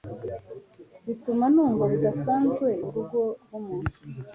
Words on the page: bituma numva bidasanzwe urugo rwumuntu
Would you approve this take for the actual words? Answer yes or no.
yes